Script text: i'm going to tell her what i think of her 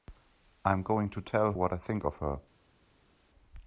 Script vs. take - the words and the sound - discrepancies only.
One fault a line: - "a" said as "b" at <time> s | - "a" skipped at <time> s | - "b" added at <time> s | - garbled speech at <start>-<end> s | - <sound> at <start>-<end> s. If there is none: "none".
- "her" skipped at 1.5 s